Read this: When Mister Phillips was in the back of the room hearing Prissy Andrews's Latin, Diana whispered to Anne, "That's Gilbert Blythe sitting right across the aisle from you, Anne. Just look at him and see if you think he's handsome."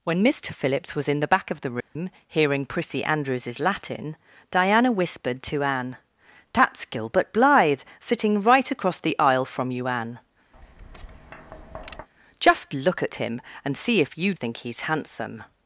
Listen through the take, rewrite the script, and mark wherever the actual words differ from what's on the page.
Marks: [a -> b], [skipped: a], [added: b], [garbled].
When Mister Phillips was in the back of the room hearing Prissy Andrews's Latin, Diana whispered to Anne, "That's Gilbert Blythe sitting right across the aisle from you, Anne. Just look at him and see if you think he's handsome."